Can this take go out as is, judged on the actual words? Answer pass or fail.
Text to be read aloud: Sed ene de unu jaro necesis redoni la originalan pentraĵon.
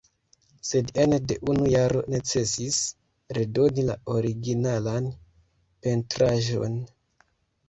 pass